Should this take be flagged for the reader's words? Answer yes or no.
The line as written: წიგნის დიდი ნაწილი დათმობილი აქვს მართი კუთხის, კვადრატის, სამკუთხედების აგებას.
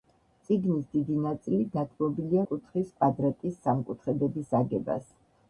yes